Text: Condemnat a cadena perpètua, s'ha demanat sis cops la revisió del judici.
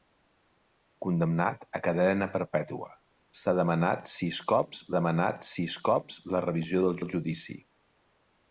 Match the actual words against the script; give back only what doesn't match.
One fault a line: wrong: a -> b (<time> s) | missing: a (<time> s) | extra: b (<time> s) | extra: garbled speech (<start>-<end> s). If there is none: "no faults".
extra: demanat sis cops (5.0 s)
extra: del (7.0 s)